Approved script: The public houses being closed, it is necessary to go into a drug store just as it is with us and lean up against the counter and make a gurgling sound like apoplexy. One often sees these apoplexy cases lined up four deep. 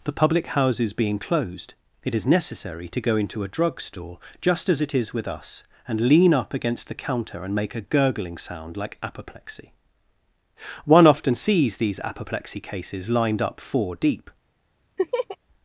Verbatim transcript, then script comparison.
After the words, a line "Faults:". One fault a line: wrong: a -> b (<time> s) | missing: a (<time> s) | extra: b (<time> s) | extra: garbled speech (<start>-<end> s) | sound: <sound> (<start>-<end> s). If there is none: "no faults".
The public houses being closed, it is necessary to go into a drug store just as it is with us and lean up against the counter and make a gurgling sound like apoplexy. One often sees these apoplexy cases lined up four deep.
Faults:
sound: laugh (15.0-15.4 s)